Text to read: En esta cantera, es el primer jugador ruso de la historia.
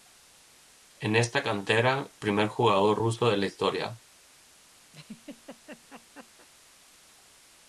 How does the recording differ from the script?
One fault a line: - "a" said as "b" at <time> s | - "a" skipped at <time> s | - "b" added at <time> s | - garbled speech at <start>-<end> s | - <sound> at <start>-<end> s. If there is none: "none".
- "es el" skipped at 2.1 s
- laugh at 4.9-6.5 s